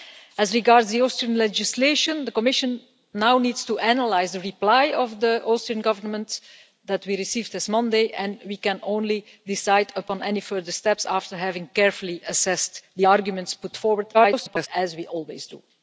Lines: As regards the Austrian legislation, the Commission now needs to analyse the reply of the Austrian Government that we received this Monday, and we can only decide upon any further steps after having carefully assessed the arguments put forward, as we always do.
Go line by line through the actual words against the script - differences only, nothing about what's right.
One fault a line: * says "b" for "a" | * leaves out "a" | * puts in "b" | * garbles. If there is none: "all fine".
* garbles